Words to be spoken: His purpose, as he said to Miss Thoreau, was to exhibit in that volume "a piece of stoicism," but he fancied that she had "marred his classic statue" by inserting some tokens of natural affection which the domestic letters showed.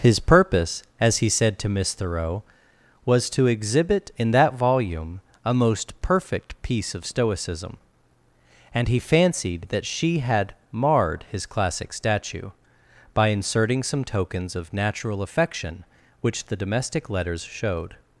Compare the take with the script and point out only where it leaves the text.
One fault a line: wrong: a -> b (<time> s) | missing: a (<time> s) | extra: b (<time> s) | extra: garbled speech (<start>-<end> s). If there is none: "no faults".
extra: most perfect (5.5 s)
wrong: but -> and (8.7 s)